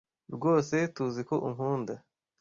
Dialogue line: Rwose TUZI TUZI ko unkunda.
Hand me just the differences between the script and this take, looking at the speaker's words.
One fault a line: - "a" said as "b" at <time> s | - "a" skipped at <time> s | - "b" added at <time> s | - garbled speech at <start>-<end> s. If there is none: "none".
- "TUZI" skipped at 1.2 s